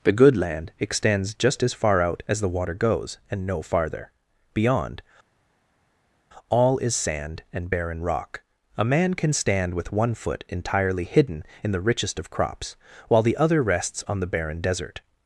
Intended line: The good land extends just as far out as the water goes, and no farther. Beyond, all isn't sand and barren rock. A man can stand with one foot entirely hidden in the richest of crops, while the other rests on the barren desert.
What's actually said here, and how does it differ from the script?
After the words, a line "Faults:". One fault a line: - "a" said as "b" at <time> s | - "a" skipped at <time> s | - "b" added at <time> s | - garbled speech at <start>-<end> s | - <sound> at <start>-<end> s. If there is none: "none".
The good land extends just as far out as the water goes, and no farther. Beyond, all is sand and barren rock. A man can stand with one foot entirely hidden in the richest of crops, while the other rests on the barren desert.
Faults:
- "isn't" said as "is" at 6.8 s